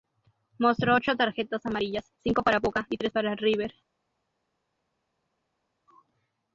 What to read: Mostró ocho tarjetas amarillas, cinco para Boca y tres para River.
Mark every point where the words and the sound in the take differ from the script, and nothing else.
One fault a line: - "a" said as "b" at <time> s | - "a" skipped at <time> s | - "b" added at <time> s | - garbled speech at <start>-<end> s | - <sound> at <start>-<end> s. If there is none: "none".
none